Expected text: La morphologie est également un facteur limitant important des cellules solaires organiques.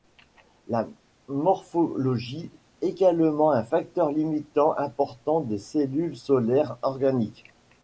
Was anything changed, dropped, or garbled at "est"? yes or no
yes